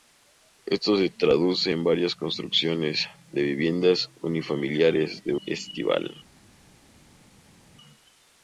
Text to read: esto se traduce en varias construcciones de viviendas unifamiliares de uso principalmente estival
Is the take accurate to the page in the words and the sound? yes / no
no